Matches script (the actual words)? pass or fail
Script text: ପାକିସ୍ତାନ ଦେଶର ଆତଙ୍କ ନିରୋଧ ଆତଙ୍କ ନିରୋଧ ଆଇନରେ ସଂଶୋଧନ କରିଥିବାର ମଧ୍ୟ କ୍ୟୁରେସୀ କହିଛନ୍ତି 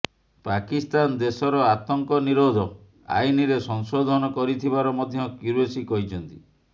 fail